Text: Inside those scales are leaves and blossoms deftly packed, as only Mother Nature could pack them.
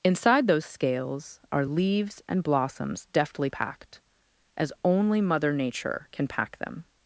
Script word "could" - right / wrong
wrong